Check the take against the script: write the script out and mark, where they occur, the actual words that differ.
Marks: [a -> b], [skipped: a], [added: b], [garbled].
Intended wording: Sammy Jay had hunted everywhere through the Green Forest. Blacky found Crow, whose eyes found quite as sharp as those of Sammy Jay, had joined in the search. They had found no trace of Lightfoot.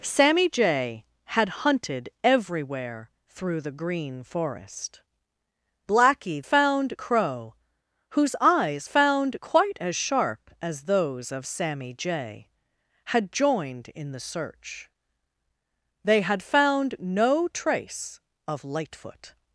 Sammy Jay had hunted everywhere through the Green Forest. Blacky found Crow, whose eyes found quite as sharp as those of Sammy Jay, had joined in the search. They had found no trace of Lightfoot.